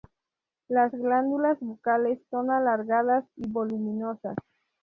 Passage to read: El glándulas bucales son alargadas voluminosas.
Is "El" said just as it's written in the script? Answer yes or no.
no